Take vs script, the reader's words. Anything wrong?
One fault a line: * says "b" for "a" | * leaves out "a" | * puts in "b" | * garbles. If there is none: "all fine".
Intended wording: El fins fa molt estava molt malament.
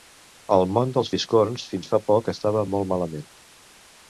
* puts in "món dels fiscorns"
* says "poc" for "molt"